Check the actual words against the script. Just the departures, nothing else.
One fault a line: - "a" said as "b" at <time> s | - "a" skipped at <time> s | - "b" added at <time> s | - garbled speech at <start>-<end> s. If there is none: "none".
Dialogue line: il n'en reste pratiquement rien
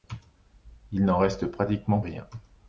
none